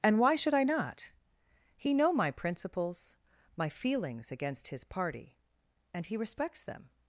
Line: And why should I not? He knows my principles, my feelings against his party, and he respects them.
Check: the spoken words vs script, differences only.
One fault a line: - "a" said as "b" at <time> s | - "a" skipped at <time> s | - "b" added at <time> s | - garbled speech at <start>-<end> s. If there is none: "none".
- "knows" said as "know" at 1.9 s